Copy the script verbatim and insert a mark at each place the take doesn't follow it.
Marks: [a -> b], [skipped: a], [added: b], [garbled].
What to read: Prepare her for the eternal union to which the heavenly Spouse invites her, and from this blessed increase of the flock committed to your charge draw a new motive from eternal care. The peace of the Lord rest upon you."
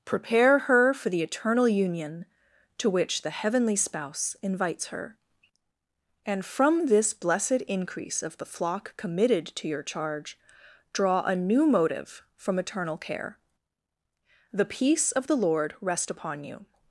Prepare her for the eternal union to which the heavenly Spouse invites her, and from this blessed increase of the flock committed to your charge draw a new motive from eternal care. The peace of the Lord rest upon you."